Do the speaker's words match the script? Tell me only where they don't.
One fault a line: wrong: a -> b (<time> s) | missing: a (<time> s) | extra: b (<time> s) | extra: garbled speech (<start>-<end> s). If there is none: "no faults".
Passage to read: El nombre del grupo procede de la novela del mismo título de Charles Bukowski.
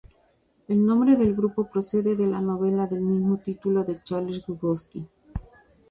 no faults